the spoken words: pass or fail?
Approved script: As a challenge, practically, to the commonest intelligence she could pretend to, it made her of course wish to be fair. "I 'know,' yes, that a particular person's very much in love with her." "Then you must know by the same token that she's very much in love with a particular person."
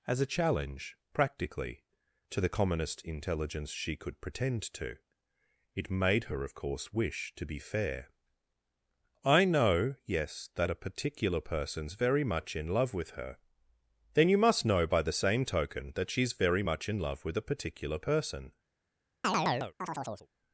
pass